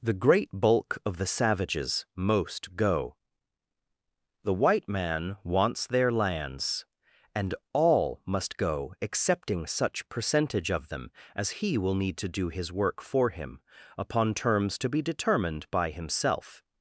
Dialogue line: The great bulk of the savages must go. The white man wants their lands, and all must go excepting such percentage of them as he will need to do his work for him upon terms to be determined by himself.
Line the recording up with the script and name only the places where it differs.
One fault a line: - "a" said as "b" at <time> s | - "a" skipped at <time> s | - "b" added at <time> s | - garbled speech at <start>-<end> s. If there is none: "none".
- "must" said as "most" at 2.1 s